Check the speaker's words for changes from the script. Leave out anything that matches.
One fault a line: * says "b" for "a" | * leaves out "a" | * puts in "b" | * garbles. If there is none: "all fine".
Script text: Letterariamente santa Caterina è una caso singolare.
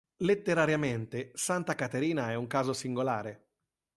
* says "un" for "una"